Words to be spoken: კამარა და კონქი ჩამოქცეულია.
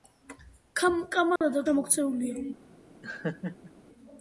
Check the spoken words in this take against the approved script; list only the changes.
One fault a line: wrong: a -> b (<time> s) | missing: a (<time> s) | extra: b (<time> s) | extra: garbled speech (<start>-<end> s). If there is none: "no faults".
missing: კონქი (1.6 s)